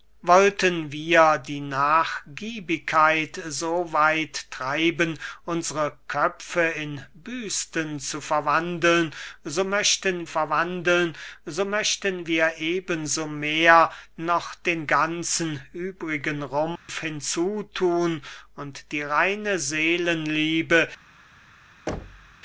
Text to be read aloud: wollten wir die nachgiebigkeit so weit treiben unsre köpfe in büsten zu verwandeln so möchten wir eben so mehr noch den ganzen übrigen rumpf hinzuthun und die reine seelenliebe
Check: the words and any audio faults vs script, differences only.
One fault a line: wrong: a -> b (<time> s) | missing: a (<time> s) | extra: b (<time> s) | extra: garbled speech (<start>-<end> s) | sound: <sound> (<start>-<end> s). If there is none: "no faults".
extra: verwandeln so möchten (10.2 s)
sound: dropout (16.8-16.9 s)
sound: thud (21.9-22.4 s)